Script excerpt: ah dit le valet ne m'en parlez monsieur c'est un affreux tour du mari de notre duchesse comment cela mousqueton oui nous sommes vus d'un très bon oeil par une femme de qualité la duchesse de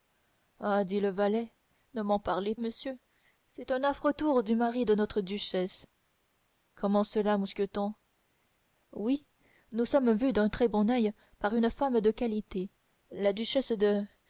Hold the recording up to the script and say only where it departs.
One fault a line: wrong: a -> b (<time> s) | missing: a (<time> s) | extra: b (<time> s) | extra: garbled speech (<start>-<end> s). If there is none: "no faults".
no faults